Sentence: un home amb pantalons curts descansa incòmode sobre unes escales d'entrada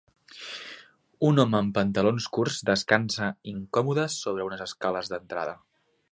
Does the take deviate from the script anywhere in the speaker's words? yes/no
no